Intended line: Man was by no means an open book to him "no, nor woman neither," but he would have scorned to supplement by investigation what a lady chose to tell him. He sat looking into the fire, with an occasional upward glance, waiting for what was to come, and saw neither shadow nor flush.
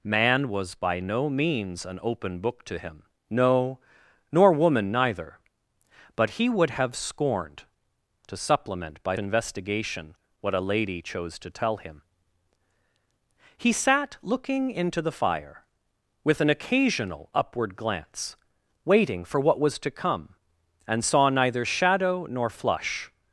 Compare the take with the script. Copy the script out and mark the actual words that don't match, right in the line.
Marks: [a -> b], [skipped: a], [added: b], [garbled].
Man was by no means an open book to him "no, nor woman neither," but he would have scorned to supplement by investigation what a lady chose to tell him. He sat looking into the fire, with an occasional upward glance, waiting for what was to come, and saw neither shadow nor flush.